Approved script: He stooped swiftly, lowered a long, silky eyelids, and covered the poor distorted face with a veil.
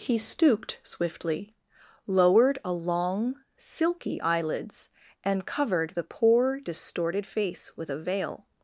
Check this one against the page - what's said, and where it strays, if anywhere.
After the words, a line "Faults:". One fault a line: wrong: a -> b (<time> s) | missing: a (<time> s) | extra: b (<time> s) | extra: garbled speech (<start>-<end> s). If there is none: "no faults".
He stooped swiftly, lowered a long, silky eyelids, and covered the poor distorted face with a veil.
Faults:
no faults